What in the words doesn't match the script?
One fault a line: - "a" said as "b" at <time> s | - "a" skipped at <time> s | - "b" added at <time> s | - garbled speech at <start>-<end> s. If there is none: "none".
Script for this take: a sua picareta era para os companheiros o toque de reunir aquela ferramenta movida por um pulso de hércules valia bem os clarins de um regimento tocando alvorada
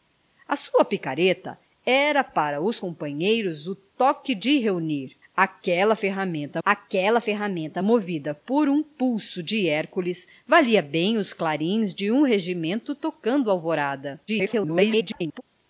- "aquela ferramenta" added at 6.6 s
- garbled speech at 14.3-15.4 s